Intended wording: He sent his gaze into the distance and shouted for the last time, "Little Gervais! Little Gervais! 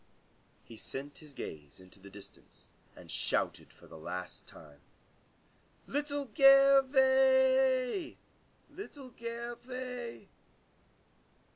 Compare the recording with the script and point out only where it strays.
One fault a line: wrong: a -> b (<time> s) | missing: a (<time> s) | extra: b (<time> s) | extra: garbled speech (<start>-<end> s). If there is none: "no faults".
no faults